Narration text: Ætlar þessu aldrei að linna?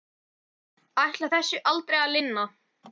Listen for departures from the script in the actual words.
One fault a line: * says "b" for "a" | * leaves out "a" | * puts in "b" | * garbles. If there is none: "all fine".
all fine